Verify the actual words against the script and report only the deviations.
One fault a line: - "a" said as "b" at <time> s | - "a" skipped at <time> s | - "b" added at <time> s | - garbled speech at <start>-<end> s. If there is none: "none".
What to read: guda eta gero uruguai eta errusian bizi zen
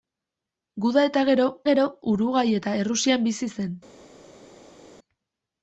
- "gero" added at 1.7 s